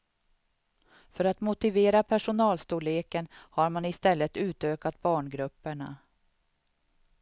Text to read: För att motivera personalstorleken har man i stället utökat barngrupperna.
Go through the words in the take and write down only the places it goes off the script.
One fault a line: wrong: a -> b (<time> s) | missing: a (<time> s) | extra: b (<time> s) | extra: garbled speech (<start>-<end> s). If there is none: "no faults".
no faults